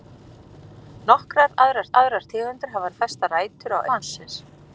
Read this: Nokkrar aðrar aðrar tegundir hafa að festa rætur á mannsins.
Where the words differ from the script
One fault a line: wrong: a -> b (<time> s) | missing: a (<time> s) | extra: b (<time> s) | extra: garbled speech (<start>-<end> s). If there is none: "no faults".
no faults